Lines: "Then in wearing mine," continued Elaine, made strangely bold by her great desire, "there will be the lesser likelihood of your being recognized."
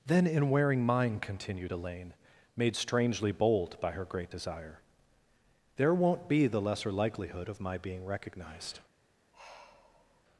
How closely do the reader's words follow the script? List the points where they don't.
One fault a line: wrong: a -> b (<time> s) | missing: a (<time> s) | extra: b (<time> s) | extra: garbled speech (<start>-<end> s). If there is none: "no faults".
wrong: will -> won't (5.9 s)
wrong: your -> my (7.6 s)